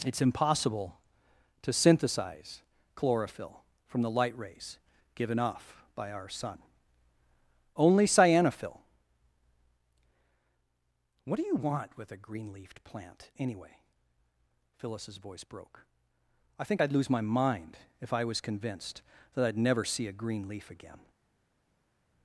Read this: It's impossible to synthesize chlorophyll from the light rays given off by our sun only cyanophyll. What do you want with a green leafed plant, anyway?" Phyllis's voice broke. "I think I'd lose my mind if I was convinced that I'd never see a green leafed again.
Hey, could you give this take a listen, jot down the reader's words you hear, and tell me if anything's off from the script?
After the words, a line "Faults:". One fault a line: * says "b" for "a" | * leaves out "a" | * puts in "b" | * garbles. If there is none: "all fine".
It's impossible to synthesize chlorophyll from the light rays given off by our sun only cyanophyll. What do you want with a green leafed plant, anyway?" Phyllis's voice broke. "I think I'd lose my mind if I was convinced that I'd never see a green leaf again.
Faults:
* says "leaf" for "leafed"